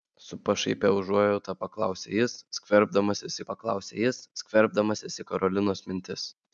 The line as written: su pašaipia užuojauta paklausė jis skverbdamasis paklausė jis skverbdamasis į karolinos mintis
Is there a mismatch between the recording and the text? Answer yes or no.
no